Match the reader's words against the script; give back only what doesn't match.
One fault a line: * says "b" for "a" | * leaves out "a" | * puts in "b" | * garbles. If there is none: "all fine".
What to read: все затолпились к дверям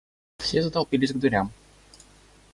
all fine